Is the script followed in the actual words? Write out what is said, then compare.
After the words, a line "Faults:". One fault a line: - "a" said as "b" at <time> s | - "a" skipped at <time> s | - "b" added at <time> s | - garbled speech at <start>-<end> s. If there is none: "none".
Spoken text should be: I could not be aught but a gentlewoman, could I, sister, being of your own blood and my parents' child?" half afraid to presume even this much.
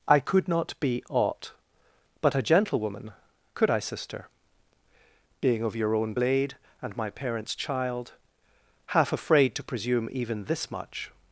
I could not be aught but a gentlewoman, could I, sister, being of your own blade and my parents' child?" half afraid to presume even this much.
Faults:
- "blood" said as "blade" at 6.1 s